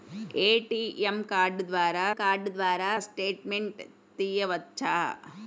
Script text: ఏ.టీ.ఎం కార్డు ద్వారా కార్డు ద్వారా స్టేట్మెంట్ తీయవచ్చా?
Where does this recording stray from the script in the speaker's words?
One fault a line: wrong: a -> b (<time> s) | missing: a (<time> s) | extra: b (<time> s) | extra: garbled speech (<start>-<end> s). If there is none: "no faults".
no faults